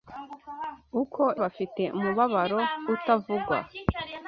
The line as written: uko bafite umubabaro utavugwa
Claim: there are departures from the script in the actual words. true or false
false